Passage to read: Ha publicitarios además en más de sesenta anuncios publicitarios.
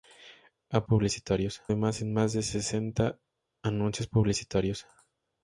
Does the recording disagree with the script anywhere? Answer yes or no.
no